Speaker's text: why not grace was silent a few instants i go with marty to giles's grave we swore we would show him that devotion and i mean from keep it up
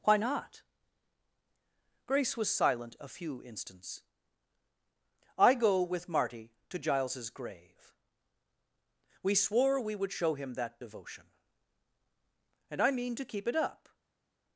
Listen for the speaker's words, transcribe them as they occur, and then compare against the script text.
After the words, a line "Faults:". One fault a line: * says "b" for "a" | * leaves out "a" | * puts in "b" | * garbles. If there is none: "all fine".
why not grace was silent a few instants i go with marty to giles's grave we swore we would show him that devotion and i mean to keep it up
Faults:
* says "to" for "from"